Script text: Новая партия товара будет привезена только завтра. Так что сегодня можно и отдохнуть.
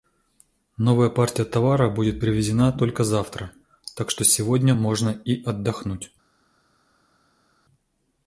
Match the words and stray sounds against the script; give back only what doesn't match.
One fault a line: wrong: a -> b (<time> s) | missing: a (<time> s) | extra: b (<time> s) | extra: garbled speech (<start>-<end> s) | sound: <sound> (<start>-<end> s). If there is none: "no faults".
no faults